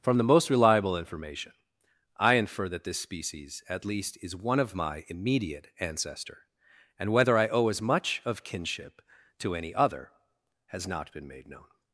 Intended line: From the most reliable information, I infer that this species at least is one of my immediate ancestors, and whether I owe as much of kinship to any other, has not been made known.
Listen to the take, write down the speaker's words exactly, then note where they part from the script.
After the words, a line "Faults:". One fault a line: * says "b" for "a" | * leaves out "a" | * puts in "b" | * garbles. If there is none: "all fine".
From the most reliable information, I infer that this species at least is one of my immediate ancestor, and whether I owe as much of kinship to any other, has not been made known.
Faults:
* says "ancestor" for "ancestors"